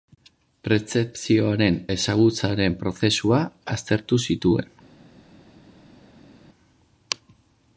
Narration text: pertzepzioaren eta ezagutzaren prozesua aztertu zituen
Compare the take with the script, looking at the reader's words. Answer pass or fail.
fail